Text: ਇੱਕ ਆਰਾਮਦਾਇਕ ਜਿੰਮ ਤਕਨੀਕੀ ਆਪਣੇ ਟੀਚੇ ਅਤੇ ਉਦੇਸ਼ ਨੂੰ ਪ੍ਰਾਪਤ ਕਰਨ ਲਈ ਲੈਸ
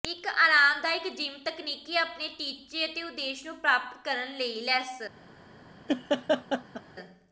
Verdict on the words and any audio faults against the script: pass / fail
fail